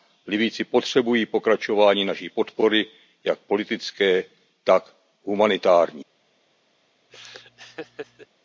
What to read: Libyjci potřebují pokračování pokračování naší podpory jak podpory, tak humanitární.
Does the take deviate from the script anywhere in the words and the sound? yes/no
yes